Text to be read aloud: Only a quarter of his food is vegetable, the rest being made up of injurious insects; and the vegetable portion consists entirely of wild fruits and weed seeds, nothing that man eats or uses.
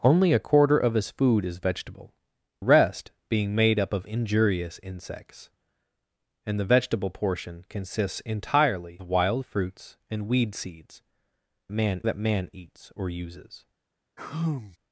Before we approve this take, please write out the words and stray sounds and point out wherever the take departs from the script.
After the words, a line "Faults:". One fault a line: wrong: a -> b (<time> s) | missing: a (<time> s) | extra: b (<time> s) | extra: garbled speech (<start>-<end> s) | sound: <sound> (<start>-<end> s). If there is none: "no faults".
Only a quarter of his food is vegetable, rest being made up of injurious insects; and the vegetable portion consists entirely wild fruits and weed seeds, man that man eats or uses.
Faults:
missing: the (2.1 s)
missing: of (9.0 s)
wrong: nothing -> man (11.7 s)
sound: sigh (14.2-14.8 s)